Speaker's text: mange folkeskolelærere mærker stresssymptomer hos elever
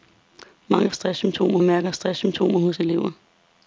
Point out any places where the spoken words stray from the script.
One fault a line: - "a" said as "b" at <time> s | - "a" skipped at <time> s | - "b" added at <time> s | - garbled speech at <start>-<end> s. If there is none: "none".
- "folkeskolelærere" said as "stresssymptomer" at 0.9 s